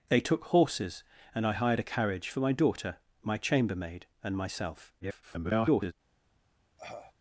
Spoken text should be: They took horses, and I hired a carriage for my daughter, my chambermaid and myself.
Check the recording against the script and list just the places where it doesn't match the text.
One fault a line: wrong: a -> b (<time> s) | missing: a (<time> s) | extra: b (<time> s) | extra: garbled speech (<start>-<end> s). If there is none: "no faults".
extra: garbled speech (5.0-5.9 s)